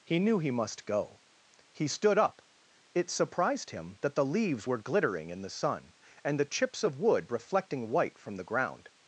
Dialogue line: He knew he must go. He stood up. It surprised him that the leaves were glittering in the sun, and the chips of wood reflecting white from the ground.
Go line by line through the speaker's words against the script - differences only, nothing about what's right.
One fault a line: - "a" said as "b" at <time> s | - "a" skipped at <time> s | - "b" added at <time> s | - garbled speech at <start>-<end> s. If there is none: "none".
none